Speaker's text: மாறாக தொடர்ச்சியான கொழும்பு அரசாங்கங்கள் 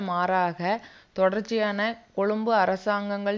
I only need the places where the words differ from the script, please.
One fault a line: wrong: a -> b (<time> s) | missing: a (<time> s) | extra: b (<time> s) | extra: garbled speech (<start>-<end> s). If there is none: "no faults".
no faults